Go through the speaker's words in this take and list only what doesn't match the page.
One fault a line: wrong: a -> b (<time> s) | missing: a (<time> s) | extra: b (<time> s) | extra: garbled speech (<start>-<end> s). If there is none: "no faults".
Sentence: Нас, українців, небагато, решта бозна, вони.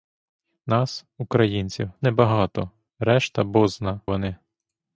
no faults